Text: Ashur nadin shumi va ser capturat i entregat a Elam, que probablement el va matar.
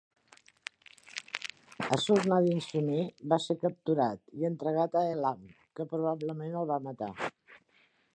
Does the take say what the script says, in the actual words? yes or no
yes